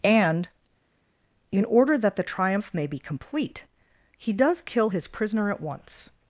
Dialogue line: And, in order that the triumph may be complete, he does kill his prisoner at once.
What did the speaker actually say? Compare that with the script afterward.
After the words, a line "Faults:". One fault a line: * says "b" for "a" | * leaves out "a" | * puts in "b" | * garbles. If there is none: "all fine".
And, in order that the triumph may be complete, he does kill his prisoner at once.
Faults:
all fine